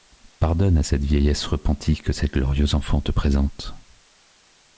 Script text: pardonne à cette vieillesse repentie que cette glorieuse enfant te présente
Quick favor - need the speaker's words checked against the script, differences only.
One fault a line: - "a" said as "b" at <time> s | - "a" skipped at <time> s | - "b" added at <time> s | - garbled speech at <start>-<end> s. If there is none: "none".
none